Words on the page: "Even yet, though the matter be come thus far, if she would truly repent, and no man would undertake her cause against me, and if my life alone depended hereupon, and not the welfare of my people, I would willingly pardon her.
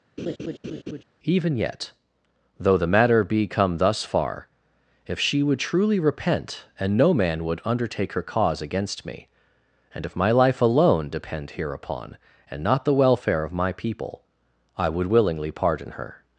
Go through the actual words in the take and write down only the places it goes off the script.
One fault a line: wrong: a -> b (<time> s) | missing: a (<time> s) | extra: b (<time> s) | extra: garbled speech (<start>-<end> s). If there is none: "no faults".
wrong: depended -> depend (11.1 s)